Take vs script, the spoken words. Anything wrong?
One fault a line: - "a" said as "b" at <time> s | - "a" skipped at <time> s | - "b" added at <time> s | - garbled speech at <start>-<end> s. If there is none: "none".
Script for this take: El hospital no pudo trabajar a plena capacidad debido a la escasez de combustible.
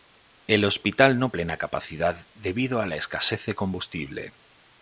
- "pudo trabajar a" skipped at 1.3 s